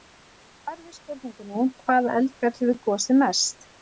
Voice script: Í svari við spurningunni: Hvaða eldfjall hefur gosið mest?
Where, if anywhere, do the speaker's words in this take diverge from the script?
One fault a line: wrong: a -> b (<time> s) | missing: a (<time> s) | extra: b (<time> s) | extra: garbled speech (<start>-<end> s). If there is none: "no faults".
no faults